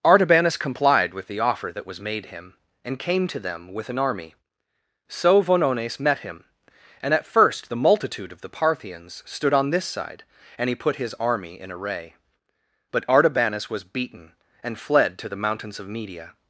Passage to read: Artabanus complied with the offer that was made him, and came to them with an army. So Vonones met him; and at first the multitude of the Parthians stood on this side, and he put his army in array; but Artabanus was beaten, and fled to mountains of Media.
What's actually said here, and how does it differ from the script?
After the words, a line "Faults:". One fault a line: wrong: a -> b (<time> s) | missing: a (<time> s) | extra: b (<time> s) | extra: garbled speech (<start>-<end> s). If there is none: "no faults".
Artabanus complied with the offer that was made him, and came to them with an army. So Vonones met him; and at first the multitude of the Parthians stood on this side, and he put his army in array; but Artabanus was beaten, and fled to the mountains of Media.
Faults:
extra: the (15.3 s)